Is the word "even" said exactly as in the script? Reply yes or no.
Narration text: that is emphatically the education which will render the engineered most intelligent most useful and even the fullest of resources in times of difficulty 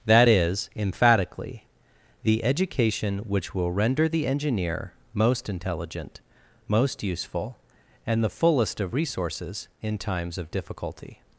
no